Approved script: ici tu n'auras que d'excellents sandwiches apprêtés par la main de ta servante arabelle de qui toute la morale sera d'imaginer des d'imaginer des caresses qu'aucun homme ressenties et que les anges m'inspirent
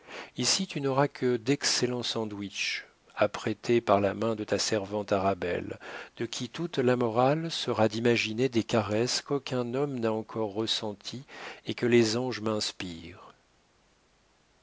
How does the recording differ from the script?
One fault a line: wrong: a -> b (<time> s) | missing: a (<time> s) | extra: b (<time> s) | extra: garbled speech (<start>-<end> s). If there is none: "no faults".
missing: d'imaginer des (8.6 s)
extra: n'a encore (10.0 s)